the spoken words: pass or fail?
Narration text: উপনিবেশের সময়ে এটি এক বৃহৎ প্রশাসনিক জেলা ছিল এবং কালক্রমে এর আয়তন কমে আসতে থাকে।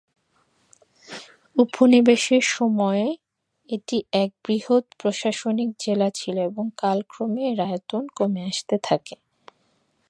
pass